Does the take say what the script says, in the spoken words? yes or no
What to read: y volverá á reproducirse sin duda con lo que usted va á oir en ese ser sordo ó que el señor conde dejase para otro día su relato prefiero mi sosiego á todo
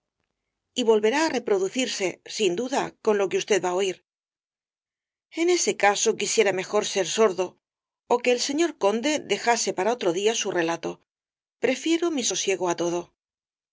no